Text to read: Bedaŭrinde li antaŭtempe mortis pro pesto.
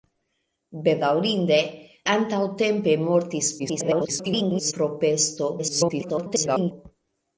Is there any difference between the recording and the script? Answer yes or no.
yes